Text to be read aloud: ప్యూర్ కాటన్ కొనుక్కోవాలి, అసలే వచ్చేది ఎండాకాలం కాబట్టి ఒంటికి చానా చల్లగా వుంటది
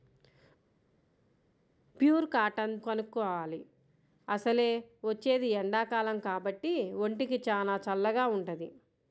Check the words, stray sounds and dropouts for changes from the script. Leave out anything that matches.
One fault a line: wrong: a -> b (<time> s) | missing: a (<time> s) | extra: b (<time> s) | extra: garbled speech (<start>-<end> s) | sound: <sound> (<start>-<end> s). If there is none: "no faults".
no faults